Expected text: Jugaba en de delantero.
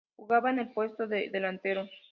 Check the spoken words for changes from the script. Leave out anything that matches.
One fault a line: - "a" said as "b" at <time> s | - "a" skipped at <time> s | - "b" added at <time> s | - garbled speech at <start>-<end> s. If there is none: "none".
- "el puesto" added at 0.6 s